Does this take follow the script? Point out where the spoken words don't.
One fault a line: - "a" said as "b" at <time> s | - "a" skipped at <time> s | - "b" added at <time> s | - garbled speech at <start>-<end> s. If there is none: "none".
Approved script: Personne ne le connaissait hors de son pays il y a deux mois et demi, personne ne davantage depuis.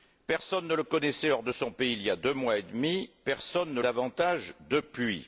none